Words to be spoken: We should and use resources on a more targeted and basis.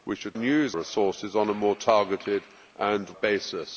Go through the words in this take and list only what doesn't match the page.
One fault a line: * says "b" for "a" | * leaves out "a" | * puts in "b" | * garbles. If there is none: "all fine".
all fine